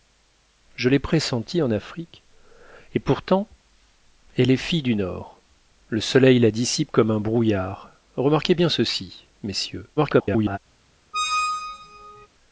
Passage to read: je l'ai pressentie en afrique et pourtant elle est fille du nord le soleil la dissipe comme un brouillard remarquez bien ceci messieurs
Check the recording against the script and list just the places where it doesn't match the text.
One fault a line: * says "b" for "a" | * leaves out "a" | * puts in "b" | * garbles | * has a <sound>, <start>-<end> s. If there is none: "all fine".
* garbles
* has a squeak, 11.1-12.3 s